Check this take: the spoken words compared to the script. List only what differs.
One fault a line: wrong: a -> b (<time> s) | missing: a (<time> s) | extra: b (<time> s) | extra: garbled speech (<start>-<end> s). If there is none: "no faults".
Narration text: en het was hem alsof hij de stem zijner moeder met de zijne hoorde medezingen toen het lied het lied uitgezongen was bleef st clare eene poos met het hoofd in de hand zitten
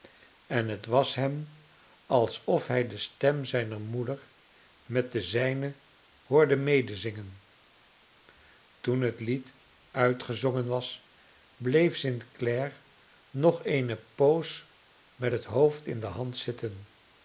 missing: het lied (9.5 s)
extra: nog (13.3 s)